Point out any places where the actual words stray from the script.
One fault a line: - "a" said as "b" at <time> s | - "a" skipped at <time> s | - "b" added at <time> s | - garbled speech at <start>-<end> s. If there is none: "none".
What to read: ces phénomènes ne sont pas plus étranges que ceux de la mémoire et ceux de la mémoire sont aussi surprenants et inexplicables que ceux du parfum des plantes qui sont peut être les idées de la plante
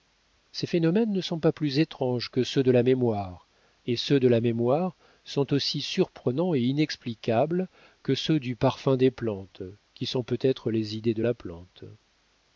none